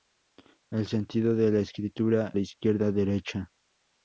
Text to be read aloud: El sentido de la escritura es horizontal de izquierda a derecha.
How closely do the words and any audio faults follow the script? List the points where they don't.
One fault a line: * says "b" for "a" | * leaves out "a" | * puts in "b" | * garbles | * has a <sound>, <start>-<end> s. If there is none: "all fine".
* leaves out "es horizontal"